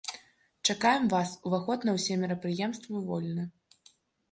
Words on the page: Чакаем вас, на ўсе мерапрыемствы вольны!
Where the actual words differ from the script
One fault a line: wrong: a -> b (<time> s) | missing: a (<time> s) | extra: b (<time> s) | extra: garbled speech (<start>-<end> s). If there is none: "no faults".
extra: уваход (1.5 s)